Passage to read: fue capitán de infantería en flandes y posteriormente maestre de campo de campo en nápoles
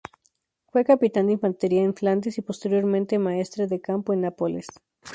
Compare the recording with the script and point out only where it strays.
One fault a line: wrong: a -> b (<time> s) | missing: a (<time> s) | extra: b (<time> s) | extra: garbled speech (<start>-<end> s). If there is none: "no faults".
missing: de campo (4.1 s)